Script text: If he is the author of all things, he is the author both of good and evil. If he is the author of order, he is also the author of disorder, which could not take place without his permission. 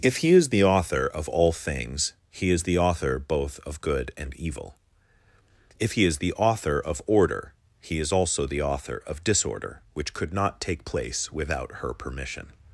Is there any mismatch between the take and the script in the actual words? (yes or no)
yes